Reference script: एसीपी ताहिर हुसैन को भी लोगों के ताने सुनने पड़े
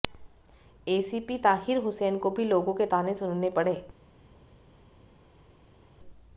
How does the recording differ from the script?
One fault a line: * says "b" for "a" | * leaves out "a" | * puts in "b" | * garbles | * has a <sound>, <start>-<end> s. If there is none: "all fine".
all fine